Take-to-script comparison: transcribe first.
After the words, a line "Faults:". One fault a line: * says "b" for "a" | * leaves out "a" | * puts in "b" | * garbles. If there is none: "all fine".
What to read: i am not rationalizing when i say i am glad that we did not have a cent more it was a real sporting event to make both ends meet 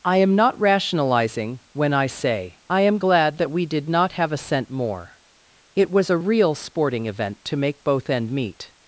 i am not rationalizing when i say i am glad that we did not have a cent more it was a real sporting event to make both end meet
Faults:
* says "end" for "ends"